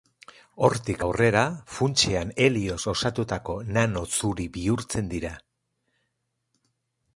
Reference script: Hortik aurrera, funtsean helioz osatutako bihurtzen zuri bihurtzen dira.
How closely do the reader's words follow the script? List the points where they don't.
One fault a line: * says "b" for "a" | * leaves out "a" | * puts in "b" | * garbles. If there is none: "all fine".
* says "nano" for "bihurtzen"